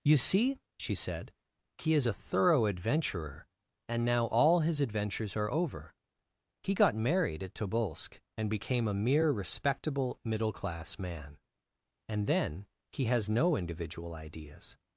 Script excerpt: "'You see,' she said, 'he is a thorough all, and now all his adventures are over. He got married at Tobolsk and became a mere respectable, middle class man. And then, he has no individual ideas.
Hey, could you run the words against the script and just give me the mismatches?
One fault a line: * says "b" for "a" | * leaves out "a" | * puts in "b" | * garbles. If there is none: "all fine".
* says "adventurer" for "all"